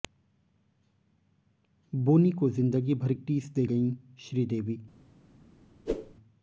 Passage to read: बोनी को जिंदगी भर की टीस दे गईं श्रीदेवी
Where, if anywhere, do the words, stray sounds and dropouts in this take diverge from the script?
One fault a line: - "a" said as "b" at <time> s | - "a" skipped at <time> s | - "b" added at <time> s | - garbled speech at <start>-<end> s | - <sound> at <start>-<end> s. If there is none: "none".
- "की" skipped at 3.1 s
- whoosh at 5.9-6.1 s